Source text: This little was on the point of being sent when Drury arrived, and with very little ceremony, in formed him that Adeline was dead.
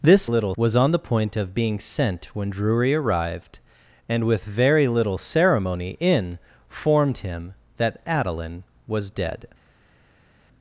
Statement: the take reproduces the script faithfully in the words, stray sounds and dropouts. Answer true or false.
true